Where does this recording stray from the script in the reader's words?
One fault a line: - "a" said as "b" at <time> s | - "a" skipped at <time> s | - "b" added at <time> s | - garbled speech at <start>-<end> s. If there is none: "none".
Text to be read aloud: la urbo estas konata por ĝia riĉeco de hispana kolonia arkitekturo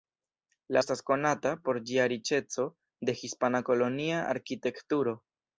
- "urbo" skipped at 0.8 s